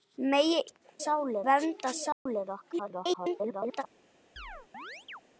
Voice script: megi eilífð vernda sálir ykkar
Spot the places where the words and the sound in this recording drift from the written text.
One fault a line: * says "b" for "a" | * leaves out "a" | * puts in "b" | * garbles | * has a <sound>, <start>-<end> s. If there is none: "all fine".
* says "sálir" for "eilífð"
* has a dropout, 2.1-2.3 s
* garbles
* has a chirp, 4.4-5.2 s